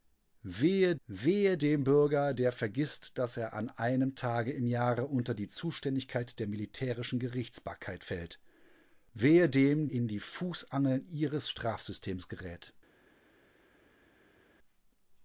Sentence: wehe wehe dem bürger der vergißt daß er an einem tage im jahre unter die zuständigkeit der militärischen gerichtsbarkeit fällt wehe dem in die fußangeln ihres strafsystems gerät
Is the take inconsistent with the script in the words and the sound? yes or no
no